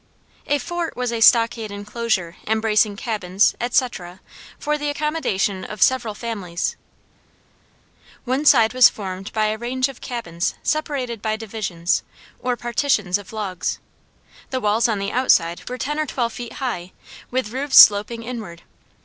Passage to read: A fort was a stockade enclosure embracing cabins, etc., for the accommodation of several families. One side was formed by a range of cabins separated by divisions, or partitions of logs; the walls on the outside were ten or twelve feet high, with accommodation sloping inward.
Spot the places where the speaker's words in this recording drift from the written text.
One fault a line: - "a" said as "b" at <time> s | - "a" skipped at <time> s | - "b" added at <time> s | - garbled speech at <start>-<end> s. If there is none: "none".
- "accommodation" said as "roofs" at 17.5 s